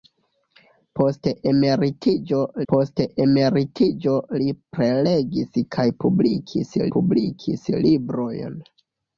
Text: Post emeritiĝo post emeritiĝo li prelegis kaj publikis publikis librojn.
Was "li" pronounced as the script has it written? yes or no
yes